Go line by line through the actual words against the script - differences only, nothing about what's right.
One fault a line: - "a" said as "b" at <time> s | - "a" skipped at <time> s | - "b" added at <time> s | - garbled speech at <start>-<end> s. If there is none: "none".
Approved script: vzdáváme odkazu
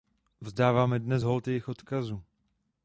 - "dnes hold jejich" added at 1.0 s